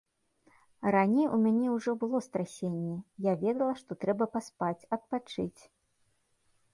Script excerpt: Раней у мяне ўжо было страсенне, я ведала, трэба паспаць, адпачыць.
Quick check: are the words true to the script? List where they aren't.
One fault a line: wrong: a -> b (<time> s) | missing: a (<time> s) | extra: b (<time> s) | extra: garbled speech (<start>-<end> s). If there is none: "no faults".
extra: што (3.8 s)